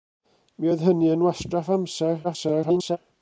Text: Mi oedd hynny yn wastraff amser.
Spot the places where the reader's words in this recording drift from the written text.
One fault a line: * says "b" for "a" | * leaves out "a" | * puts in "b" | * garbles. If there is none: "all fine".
* garbles